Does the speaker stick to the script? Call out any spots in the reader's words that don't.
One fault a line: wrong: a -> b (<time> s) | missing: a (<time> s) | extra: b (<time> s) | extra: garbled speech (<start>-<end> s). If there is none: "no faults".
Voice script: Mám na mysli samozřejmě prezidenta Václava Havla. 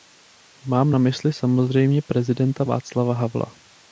no faults